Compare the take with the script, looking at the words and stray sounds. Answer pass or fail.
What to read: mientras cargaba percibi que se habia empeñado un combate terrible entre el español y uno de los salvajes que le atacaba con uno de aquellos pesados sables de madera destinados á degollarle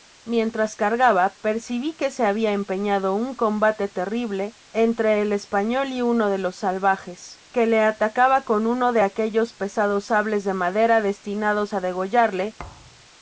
fail